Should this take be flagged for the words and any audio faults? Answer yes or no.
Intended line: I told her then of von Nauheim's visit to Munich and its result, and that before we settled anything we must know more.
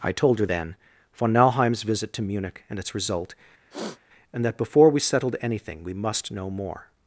yes